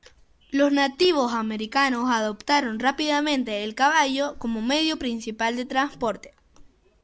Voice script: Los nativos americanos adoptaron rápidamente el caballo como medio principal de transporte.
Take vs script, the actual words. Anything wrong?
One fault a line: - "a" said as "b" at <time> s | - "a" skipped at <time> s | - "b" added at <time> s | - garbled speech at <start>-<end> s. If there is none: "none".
none